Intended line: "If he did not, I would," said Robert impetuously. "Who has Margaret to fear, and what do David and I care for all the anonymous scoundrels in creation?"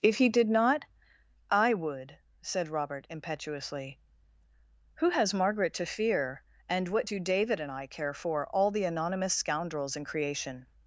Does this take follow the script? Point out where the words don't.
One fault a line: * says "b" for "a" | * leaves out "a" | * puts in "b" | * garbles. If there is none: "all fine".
all fine